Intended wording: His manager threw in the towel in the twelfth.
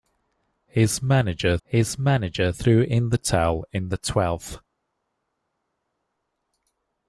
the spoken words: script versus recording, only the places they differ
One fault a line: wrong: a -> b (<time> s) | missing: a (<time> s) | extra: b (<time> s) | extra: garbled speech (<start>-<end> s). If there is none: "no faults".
extra: his manager (1.6 s)